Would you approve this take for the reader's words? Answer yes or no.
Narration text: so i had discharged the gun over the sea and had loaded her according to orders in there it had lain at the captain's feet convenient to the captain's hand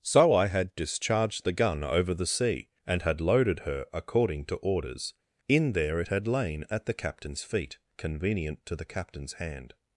yes